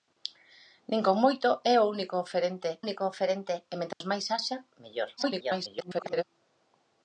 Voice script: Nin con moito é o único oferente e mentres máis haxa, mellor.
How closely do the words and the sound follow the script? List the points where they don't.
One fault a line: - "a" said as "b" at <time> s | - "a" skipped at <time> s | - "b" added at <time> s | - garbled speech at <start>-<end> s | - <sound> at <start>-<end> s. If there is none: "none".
- "único oferente" added at 2.8 s
- dropout at 3.9-4.0 s
- garbled speech at 5.2-6.2 s